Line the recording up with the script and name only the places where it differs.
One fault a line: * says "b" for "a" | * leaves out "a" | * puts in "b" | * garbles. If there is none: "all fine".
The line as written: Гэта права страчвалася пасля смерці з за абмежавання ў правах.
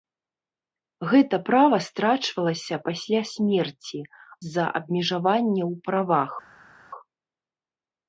all fine